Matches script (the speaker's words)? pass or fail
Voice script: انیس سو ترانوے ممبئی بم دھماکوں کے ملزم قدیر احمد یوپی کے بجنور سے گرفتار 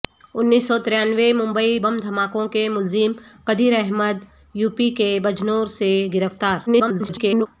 fail